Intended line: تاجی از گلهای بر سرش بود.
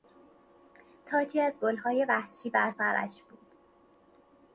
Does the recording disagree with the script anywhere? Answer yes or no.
yes